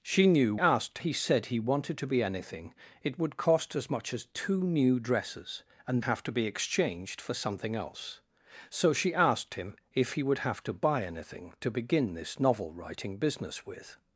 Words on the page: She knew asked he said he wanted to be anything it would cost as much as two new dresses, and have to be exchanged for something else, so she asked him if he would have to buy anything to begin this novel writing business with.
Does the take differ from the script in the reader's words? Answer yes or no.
no